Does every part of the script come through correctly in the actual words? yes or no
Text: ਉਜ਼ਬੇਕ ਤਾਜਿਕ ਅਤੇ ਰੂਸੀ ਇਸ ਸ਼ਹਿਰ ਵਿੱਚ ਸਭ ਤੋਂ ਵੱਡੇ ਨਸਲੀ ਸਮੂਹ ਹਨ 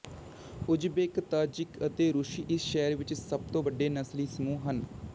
yes